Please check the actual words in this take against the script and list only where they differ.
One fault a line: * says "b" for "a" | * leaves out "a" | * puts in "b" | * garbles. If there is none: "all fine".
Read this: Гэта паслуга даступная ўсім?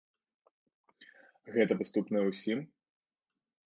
* leaves out "паслуга"